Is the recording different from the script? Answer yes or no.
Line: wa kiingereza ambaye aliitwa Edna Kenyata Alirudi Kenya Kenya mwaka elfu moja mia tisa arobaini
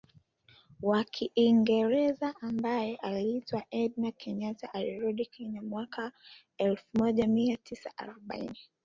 yes